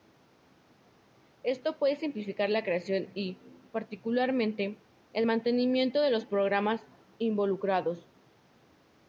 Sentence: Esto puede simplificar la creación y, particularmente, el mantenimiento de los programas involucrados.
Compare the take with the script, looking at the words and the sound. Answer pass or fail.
pass